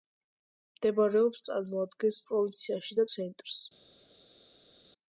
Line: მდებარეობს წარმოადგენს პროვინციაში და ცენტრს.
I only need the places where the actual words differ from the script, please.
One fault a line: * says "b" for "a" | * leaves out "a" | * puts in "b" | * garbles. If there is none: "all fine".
all fine